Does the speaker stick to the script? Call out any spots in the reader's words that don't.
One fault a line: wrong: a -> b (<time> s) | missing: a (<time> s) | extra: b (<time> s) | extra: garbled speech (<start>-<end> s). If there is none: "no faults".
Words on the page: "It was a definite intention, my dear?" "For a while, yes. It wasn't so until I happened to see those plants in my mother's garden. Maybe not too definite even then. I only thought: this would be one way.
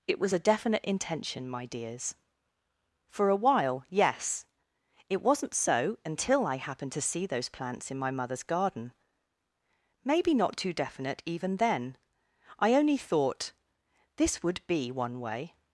wrong: dear -> dears (1.7 s)